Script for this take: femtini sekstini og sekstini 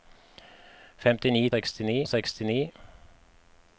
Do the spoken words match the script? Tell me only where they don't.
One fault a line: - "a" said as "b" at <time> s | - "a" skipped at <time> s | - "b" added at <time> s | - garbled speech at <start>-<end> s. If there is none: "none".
none